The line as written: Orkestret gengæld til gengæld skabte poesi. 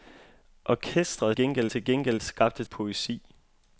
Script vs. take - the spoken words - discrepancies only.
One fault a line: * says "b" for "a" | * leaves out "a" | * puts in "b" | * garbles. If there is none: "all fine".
all fine